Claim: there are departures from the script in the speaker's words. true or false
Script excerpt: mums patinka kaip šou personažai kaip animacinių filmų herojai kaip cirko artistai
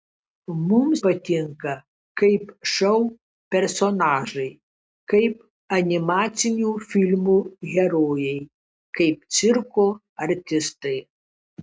false